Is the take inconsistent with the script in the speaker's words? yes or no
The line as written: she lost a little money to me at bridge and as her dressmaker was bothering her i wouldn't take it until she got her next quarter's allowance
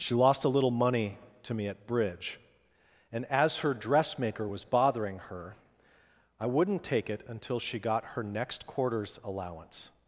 no